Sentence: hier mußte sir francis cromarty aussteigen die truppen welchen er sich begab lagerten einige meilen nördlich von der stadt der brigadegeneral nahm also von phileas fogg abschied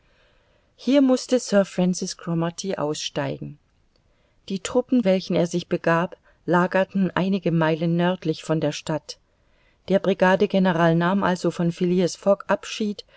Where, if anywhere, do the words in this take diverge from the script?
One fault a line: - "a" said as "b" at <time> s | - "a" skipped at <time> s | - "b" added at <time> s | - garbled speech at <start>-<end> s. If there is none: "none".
none